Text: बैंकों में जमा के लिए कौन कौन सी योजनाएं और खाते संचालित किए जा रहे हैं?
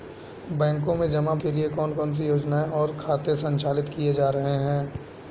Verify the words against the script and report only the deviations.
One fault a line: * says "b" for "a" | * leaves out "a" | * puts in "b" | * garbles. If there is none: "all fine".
all fine